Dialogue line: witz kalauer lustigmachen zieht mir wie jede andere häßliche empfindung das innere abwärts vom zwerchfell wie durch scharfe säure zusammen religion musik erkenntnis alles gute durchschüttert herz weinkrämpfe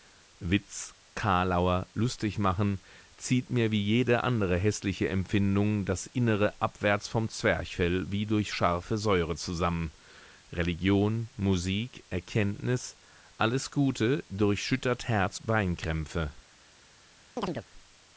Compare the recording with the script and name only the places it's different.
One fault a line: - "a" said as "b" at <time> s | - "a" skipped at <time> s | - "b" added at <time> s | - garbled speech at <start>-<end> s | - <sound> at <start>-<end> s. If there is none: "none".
- chirp at 17.4-17.7 s